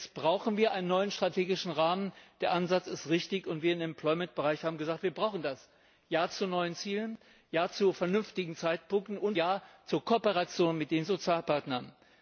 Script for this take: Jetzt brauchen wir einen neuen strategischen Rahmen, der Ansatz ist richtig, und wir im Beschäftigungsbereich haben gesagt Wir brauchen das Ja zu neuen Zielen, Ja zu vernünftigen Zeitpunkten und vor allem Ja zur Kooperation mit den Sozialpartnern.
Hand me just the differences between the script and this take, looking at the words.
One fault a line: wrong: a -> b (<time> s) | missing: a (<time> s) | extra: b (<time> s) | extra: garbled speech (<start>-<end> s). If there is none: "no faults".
missing: vor allem (9.4 s)